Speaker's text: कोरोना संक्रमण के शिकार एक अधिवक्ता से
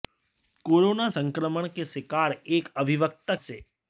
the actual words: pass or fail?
pass